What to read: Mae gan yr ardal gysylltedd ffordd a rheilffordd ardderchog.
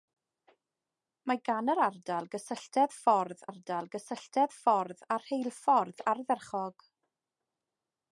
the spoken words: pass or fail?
fail